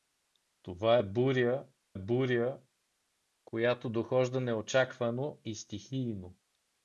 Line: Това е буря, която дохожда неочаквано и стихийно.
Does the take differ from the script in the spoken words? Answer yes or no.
yes